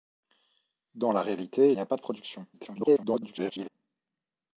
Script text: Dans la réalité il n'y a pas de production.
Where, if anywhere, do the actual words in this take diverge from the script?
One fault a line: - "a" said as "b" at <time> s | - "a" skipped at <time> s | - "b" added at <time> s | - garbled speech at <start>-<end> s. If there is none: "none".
- "il" skipped at 1.7 s
- garbled speech at 2.5-3.7 s